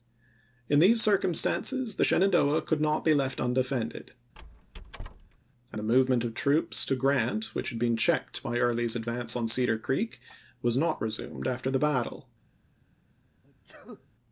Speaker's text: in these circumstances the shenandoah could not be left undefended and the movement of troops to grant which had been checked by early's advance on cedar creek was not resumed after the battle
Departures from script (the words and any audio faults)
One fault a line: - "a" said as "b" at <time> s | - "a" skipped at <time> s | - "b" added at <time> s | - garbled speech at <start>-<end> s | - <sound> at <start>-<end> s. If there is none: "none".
- squeak at 4.3-5.4 s
- sneeze at 13.4-14.1 s